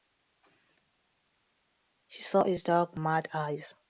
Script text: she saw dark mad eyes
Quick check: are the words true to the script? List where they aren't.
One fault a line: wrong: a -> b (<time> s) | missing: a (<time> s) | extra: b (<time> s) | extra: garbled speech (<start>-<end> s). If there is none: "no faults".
extra: his (2.4 s)